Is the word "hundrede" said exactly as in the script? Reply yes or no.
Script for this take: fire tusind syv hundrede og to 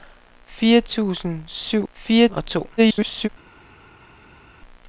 no